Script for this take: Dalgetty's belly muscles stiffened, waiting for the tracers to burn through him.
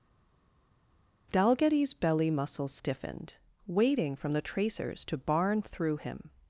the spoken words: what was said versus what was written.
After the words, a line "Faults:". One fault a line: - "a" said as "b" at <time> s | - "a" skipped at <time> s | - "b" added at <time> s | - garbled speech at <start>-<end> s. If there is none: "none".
Dalgetty's belly muscles stiffened, waiting from the tracers to barn through him.
Faults:
- "for" said as "from" at 4.1 s
- "burn" said as "barn" at 5.2 s